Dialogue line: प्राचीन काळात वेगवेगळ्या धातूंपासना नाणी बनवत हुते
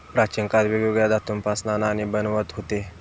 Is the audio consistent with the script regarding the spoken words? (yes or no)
yes